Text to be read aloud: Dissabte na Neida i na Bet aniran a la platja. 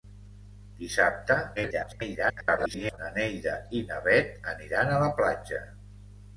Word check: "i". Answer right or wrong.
right